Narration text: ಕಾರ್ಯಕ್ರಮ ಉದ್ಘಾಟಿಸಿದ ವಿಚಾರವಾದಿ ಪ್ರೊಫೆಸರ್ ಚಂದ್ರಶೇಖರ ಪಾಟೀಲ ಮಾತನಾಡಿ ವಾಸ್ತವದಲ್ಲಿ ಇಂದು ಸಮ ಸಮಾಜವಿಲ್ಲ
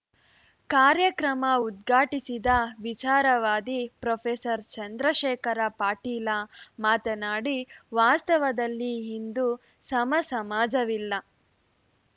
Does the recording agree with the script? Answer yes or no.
yes